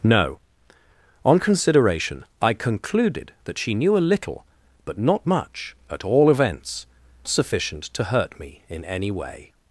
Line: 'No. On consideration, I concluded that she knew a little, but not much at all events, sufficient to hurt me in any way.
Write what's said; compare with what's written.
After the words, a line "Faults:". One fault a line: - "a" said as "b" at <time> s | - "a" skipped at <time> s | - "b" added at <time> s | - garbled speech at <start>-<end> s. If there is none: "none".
'No. On consideration, I concluded that she knew a little, but not much at all events, sufficient to hurt me in any way.
Faults:
none